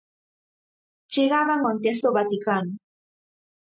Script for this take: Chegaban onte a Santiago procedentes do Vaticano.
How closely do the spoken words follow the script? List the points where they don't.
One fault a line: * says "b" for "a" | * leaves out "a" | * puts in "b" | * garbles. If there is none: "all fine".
* leaves out "Santiago procedentes"